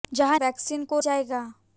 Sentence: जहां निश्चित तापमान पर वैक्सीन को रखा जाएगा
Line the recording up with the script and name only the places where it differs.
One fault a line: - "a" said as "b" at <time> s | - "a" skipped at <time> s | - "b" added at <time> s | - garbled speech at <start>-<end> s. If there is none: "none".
- "निश्चित तापमान पर" skipped at 0.4 s
- "रखा" skipped at 1.0 s